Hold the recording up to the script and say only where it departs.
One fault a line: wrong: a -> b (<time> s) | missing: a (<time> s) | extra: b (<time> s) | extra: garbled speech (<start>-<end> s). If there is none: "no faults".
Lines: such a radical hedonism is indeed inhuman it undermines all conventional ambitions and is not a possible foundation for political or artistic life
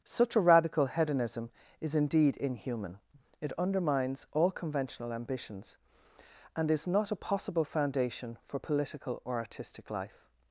no faults